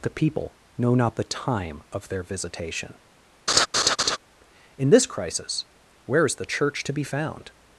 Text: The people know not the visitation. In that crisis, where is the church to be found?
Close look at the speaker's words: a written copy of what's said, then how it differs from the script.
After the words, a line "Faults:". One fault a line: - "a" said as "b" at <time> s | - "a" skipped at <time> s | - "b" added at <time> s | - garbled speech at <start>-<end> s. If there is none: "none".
The people know not the time of their visitation. In this crisis, where is the church to be found?
Faults:
- "time of their" added at 1.2 s
- "that" said as "this" at 4.9 s